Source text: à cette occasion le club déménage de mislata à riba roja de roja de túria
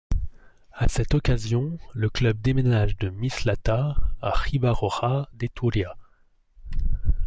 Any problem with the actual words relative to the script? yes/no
yes